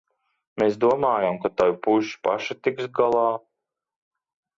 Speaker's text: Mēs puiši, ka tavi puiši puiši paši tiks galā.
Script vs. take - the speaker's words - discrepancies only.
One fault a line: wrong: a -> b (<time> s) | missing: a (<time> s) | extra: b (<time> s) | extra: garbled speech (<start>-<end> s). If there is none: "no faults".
wrong: puiši -> domājām (0.8 s)
missing: puiši (2.2 s)